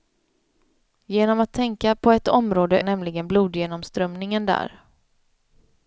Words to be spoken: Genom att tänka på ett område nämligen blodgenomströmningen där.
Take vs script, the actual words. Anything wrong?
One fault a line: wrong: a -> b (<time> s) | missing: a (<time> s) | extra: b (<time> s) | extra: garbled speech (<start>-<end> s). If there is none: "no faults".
no faults